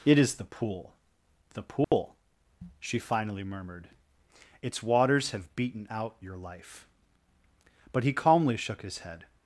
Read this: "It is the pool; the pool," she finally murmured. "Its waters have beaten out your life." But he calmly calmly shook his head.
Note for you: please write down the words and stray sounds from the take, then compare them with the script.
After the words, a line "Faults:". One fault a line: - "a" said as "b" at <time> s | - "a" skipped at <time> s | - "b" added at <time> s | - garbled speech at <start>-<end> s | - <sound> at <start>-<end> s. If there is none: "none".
"It is the pool; the pool," she finally murmured. "Its waters have beaten out your life." But he calmly shook his head.
Faults:
- dropout at 1.8-1.9 s
- "calmly" skipped at 8.6 s